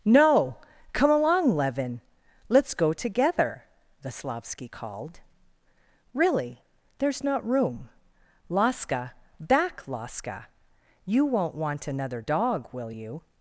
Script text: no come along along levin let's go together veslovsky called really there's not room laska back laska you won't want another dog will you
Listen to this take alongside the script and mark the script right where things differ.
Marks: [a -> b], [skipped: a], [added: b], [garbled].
no come along [skipped: along] levin let's go together veslovsky called really there's not room laska back laska you won't want another dog will you